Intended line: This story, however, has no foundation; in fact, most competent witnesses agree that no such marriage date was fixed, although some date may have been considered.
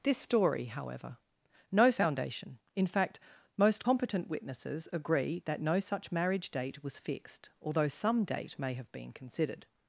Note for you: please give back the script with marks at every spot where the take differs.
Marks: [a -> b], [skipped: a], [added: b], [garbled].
This story, however, [skipped: has] no foundation; in fact, most competent witnesses agree that no such marriage date was fixed, although some date may have been considered.